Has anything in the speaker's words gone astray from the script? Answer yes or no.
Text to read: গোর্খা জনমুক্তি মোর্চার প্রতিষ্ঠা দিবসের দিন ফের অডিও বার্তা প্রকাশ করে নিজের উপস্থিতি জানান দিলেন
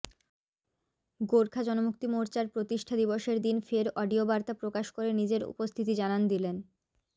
no